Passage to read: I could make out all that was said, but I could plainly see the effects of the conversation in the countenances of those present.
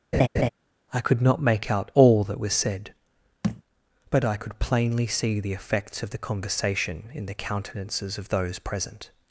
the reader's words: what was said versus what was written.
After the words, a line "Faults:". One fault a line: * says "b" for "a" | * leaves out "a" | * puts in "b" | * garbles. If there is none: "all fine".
I could not make out all that was said, but I could plainly see the effects of the conversation in the countenances of those present.
Faults:
* puts in "not"